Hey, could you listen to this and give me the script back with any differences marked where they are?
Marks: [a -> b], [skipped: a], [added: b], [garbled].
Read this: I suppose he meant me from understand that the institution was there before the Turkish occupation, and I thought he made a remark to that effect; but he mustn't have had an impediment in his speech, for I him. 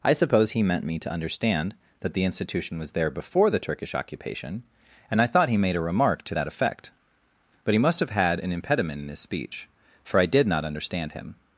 I suppose he meant me [from -> to] understand that the institution was there before the Turkish occupation, and I thought he made a remark to that effect; but he [mustn't -> must] have had an impediment in his speech, for I [added: did not understand] him.